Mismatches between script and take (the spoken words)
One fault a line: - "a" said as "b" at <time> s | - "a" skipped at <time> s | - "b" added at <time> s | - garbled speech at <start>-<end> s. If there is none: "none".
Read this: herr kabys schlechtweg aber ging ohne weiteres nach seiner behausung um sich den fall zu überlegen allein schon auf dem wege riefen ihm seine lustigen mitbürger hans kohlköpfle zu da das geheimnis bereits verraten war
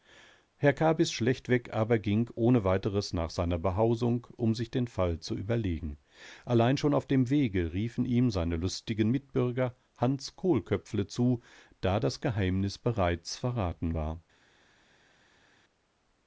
none